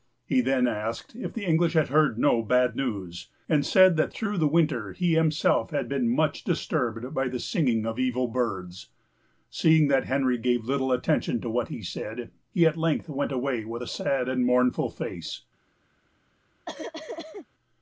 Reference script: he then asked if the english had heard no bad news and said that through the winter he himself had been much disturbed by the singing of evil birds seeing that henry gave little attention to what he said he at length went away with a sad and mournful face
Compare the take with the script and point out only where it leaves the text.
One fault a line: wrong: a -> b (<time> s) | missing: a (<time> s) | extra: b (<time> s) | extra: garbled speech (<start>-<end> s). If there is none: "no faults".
no faults